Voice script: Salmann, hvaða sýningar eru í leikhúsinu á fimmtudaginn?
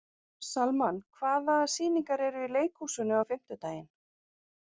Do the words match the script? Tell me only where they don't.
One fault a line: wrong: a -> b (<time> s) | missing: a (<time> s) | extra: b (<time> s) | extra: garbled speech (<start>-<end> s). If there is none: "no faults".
no faults